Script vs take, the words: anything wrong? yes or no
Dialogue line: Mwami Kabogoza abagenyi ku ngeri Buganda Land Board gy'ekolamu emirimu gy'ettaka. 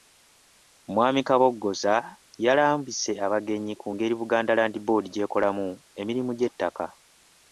yes